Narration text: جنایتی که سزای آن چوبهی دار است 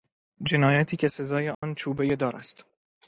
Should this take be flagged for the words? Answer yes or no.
no